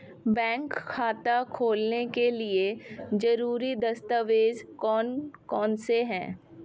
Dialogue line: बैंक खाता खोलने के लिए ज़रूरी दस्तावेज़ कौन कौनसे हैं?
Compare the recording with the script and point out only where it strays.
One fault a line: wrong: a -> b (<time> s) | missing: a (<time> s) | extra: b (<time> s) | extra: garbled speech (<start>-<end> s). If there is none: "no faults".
no faults